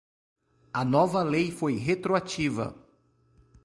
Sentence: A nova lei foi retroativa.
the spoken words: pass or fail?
pass